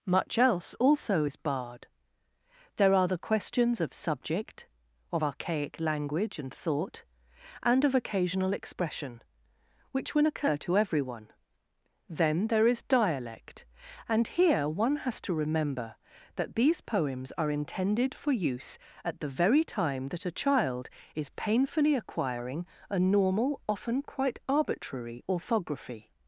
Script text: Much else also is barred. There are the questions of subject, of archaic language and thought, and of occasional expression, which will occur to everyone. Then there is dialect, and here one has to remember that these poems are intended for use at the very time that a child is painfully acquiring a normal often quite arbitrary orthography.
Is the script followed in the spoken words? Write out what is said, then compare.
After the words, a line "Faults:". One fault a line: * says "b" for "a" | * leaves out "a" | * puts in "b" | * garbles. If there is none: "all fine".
Much else also is barred. There are the questions of subject, of archaic language and thought, and of occasional expression, which will occur to everyone. Then there is dialect, and here one has to remember that these poems are intended for use at the very time that a child is painfully acquiring a normal often quite arbitrary orthography.
Faults:
all fine